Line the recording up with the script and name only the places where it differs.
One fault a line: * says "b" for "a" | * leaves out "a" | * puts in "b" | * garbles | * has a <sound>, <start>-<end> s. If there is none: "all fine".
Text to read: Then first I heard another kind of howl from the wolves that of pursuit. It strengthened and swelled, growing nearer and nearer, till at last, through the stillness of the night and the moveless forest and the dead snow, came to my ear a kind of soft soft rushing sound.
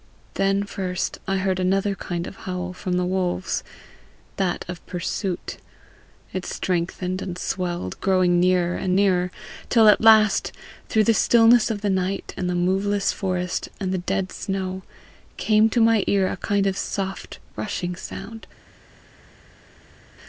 * leaves out "soft"